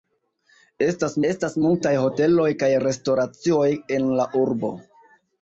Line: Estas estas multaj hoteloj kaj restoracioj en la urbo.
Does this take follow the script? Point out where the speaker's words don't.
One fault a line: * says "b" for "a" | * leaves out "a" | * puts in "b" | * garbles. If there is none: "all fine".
all fine